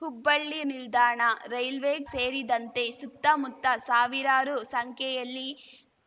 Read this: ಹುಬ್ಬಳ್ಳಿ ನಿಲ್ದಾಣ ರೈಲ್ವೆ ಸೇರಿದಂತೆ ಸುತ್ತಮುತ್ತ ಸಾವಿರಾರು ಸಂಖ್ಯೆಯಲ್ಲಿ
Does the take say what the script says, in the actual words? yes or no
yes